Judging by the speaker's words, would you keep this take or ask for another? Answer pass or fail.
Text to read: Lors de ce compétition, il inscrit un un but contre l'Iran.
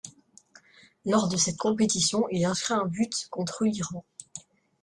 fail